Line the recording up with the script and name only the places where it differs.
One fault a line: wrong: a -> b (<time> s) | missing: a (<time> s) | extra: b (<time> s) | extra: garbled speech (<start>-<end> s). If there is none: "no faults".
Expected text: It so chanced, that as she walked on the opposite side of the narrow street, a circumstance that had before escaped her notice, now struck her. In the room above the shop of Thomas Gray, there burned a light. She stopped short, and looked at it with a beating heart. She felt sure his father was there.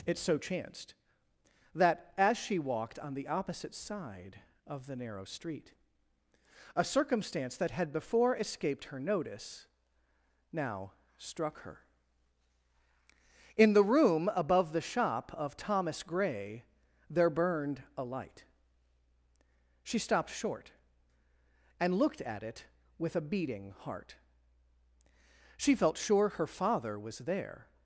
wrong: his -> her (26.3 s)